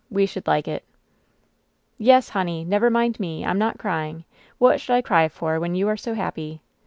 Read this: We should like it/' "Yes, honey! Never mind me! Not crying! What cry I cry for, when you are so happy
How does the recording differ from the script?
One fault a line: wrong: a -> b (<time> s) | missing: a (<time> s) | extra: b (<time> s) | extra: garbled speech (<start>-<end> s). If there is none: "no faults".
extra: I'm (3.5 s)
wrong: cry -> should (4.8 s)